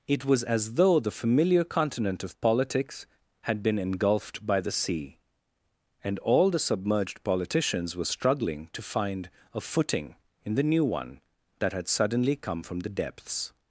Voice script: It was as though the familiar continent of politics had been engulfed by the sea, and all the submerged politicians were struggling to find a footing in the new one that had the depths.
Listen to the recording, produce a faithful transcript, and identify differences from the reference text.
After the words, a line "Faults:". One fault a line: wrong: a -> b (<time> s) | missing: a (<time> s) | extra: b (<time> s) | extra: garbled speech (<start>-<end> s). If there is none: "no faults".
It was as though the familiar continent of politics had been engulfed by the sea, and all the submerged politicians were struggling to find a footing in the new one that had suddenly come from the depths.
Faults:
extra: suddenly come from (11.9 s)